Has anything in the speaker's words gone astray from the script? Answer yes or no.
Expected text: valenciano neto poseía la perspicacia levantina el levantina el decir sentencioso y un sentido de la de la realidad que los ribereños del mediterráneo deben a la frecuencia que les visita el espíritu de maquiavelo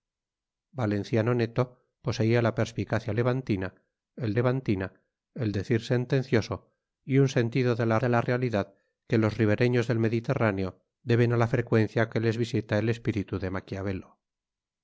no